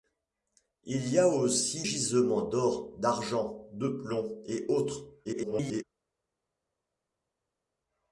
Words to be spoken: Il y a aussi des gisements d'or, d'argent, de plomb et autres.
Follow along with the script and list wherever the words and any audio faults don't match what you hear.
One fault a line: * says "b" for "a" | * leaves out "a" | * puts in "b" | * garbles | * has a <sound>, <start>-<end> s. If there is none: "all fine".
* leaves out "des"
* garbles